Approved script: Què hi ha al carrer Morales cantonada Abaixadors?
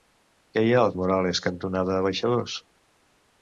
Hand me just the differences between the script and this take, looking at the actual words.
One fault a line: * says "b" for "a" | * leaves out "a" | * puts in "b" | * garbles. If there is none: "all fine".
* leaves out "carrer"